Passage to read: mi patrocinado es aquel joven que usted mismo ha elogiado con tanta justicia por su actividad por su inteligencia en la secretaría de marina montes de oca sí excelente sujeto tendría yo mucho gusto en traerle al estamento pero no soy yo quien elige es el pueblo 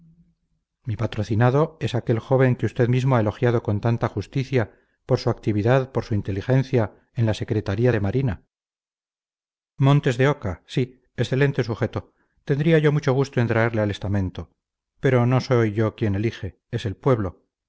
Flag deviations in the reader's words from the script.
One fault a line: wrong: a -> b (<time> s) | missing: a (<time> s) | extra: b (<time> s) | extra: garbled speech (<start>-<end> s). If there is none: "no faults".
no faults